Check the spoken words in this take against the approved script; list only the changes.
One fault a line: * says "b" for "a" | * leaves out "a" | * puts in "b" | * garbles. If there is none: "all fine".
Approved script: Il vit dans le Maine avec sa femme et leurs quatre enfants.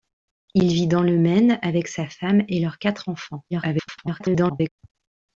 * garbles